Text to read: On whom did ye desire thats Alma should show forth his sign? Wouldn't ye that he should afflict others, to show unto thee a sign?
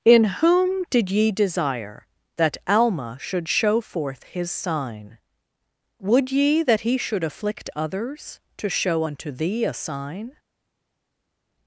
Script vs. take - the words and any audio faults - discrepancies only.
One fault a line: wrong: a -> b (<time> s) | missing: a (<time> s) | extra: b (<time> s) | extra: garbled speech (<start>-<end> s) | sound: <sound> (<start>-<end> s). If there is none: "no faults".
wrong: On -> In (0.0 s)
wrong: thats -> that (2.4 s)
wrong: Wouldn't -> Would (6.0 s)